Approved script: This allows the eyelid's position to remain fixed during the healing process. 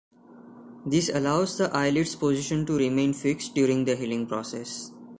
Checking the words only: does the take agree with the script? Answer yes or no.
yes